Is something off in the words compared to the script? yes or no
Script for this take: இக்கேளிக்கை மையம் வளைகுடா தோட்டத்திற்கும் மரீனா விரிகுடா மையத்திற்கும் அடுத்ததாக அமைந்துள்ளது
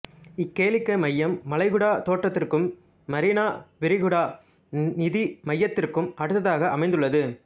yes